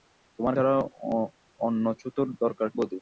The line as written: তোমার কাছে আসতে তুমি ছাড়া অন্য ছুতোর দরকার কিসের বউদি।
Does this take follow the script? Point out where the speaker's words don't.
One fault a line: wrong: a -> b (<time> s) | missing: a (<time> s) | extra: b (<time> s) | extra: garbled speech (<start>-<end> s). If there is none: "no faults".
missing: কাছে আসতে তুমি (0.6 s)
missing: কিসের (2.7 s)